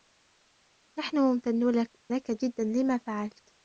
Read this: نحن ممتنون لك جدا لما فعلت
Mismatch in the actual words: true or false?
true